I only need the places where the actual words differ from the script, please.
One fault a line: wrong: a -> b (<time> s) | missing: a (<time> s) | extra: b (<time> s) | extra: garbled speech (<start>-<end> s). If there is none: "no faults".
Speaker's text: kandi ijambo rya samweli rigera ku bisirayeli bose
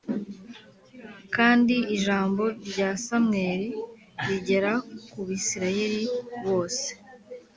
no faults